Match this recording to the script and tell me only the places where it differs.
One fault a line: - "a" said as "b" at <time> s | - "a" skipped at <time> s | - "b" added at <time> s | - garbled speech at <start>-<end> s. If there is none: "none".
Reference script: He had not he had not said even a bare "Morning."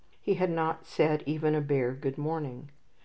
- "he had not" skipped at 0.9 s
- "Good" added at 1.9 s